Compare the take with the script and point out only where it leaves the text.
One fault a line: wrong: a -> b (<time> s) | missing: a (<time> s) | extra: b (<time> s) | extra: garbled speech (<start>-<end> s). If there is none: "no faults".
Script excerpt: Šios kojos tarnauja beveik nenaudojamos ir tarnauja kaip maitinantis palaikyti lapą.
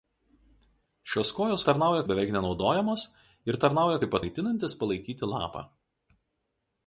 no faults